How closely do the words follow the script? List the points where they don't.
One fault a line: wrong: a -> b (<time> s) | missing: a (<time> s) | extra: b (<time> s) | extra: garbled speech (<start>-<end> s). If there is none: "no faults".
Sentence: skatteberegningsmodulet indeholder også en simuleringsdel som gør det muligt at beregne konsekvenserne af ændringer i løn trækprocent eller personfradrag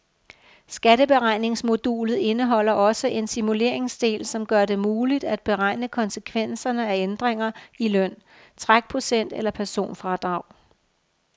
no faults